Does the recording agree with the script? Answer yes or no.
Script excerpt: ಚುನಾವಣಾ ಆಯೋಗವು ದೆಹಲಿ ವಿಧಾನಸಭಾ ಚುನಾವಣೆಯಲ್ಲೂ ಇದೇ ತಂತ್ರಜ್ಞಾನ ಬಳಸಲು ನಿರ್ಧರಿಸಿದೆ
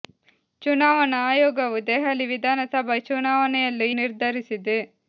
no